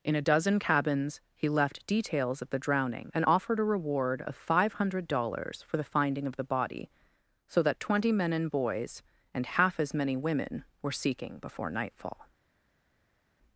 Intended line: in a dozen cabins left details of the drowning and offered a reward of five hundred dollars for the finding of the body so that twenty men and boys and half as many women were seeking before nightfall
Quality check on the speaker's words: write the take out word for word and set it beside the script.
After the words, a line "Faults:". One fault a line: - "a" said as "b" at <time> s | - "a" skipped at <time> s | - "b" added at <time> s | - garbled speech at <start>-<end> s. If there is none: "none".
in a dozen cabins he left details of the drowning and offered a reward of five hundred dollars for the finding of the body so that twenty men and boys and half as many women were seeking before nightfall
Faults:
- "he" added at 1.3 s